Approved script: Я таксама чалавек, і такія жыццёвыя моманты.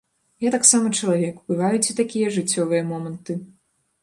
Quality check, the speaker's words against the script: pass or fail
fail